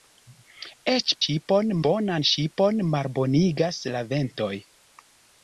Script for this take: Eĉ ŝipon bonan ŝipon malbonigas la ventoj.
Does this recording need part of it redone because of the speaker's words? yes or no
no